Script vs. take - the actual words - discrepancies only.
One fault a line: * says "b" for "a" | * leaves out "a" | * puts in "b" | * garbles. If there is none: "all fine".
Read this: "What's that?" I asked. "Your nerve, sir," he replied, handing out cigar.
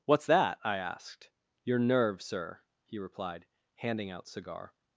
all fine